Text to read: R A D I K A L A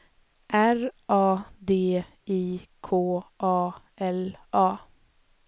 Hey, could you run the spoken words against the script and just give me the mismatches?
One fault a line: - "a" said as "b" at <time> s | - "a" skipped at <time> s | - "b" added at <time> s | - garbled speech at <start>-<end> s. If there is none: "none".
none